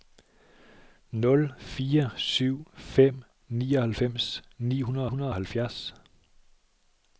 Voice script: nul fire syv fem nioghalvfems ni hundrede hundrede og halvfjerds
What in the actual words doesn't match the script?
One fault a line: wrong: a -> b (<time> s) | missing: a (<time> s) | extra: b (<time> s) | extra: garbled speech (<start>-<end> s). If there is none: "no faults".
no faults